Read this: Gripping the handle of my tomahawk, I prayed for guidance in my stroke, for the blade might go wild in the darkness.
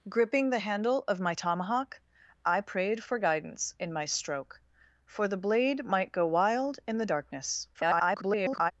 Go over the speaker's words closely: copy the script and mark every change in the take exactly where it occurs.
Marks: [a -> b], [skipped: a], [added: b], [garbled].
Gripping the handle of my tomahawk, I prayed for guidance in my stroke, for the blade might go wild in the darkness. [garbled]